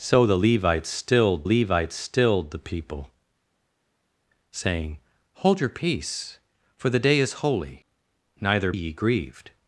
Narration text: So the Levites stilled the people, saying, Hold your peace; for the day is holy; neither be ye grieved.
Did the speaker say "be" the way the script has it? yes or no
no